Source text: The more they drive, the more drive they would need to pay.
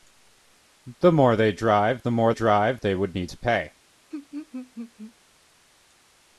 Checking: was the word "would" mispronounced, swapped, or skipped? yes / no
no